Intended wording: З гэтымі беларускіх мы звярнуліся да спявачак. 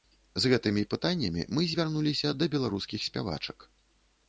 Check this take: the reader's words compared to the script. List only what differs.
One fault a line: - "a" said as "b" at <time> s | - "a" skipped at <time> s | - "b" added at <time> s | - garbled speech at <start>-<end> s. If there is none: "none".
- "беларускіх" said as "пытаннямі" at 0.9 s
- "беларускіх" added at 2.6 s